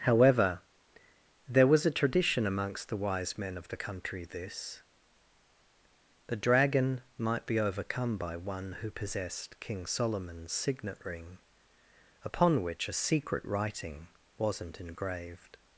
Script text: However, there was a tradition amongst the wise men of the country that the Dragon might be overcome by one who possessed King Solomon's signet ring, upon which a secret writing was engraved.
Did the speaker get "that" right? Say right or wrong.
wrong